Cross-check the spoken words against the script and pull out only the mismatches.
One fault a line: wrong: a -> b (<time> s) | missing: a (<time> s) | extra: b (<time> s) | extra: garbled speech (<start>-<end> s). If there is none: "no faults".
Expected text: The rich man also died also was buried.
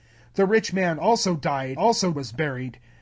no faults